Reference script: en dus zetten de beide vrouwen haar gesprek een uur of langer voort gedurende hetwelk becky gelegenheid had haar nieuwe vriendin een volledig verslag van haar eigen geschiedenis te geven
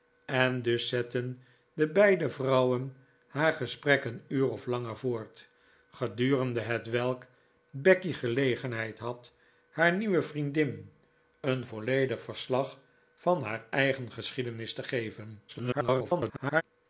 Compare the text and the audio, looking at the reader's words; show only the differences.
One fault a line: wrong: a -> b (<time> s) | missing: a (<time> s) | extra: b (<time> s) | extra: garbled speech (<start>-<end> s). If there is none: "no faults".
extra: garbled speech (15.5-16.6 s)